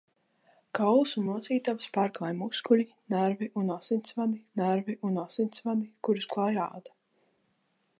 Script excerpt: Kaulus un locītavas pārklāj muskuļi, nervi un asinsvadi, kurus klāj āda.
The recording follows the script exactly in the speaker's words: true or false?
false